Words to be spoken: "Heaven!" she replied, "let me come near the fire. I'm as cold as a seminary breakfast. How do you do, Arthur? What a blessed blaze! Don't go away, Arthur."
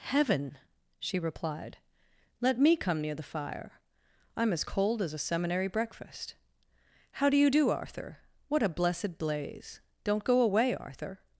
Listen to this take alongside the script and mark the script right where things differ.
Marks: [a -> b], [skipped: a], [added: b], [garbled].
"Heaven!" she replied, "let me come near the fire. I'm as cold as a seminary breakfast. How do you do, Arthur? What a blessed blaze! Don't go away, Arthur."